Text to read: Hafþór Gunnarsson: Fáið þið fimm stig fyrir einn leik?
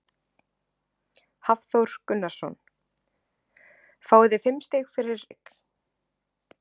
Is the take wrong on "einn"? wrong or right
wrong